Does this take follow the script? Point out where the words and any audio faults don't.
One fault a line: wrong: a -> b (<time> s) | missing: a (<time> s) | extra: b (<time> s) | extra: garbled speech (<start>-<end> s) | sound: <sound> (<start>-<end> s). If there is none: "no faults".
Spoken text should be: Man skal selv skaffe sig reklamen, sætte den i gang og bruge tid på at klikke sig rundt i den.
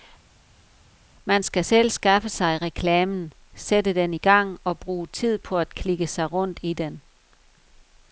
no faults